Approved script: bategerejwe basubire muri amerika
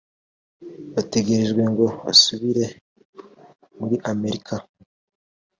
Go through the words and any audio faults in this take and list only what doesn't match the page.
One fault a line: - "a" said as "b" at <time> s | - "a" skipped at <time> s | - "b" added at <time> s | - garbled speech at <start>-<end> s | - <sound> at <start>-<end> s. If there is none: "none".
- "ngo" added at 1.7 s